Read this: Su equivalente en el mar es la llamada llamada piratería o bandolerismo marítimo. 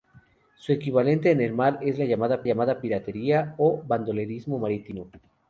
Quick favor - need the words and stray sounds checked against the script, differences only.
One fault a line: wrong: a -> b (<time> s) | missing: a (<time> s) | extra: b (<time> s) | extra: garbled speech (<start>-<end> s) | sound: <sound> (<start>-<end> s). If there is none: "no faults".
no faults